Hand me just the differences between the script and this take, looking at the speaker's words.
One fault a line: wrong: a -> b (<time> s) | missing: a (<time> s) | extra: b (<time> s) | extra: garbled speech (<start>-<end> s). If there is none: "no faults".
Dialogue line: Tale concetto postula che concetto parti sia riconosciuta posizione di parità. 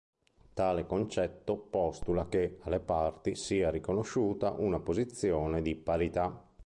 wrong: concetto -> alle (2.6 s)
extra: una (4.5 s)